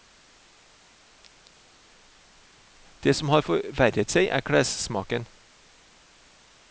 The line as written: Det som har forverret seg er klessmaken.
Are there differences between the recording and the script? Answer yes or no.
no